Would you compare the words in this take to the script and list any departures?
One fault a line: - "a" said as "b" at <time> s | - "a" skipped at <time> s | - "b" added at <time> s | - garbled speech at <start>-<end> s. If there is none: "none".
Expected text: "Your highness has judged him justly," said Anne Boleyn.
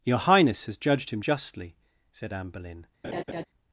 none